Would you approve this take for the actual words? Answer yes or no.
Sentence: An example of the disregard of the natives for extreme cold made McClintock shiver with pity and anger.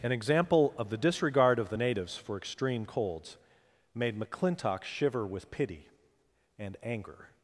no